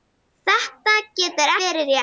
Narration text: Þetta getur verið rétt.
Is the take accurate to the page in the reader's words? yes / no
yes